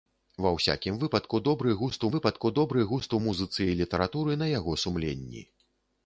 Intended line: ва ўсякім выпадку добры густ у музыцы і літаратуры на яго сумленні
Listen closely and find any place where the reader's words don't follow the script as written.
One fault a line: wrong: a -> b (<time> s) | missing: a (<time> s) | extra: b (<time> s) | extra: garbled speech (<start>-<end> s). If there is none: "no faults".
extra: выпадку добры густ (2.1 s)